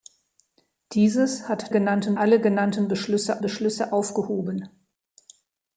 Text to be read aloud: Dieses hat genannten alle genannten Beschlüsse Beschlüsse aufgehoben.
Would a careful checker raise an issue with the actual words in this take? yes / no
no